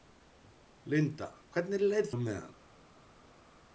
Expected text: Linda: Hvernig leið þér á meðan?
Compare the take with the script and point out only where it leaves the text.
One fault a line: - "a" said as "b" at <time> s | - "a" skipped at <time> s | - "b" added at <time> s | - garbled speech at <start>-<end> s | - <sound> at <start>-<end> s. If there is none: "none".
- "þér" skipped at 2.1 s